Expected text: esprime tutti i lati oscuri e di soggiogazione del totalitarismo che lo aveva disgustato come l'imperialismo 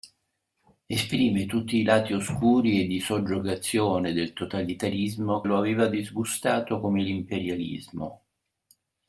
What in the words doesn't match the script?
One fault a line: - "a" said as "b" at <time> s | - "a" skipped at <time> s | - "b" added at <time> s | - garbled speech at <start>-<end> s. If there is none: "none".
- "che" skipped at 5.4 s